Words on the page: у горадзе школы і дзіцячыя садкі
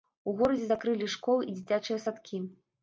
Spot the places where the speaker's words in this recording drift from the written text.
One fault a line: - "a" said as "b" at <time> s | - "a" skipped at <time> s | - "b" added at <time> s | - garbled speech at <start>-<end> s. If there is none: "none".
- "закрылі" added at 0.7 s